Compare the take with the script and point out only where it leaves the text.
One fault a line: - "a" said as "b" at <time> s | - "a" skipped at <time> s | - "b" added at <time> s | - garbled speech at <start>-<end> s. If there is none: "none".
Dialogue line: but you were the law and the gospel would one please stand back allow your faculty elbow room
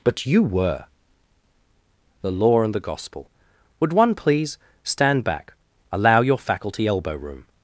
none